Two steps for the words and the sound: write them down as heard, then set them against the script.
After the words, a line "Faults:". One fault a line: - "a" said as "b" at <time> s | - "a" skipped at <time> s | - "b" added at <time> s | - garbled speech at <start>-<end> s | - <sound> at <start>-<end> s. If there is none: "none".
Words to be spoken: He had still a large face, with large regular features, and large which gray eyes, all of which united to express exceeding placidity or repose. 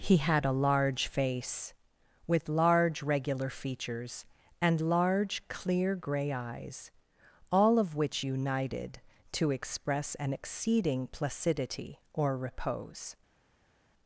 He had a large face, with large regular features, and large clear gray eyes, all of which united to express an exceeding placidity or repose.
Faults:
- "still" skipped at 0.5 s
- "which" said as "clear" at 5.5 s
- "an" added at 10.1 s